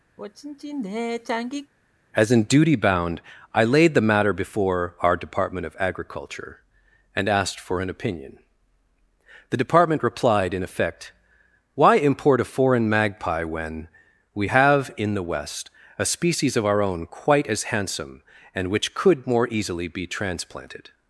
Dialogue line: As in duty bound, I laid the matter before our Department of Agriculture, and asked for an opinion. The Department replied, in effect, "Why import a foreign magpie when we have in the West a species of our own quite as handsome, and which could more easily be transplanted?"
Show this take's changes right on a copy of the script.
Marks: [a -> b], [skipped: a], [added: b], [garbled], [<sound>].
[sigh] As in duty bound, I laid the matter before our Department of Agriculture, and asked for an opinion. The Department replied, in effect, "Why import a foreign magpie when we have in the West a species of our own quite as handsome, and which could more easily be transplanted?"